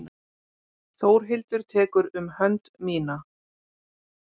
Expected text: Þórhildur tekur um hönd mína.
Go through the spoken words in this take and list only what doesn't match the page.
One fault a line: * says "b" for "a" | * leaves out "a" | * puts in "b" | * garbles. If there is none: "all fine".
all fine